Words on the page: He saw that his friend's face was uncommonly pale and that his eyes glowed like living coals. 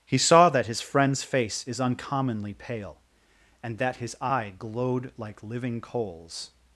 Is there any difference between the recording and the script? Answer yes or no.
yes